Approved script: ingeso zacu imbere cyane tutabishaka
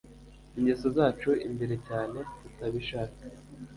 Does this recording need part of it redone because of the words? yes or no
no